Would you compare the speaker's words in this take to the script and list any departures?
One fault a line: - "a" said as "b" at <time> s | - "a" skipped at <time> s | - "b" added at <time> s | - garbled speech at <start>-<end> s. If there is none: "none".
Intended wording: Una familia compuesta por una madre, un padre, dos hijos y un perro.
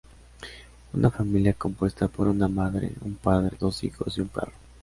none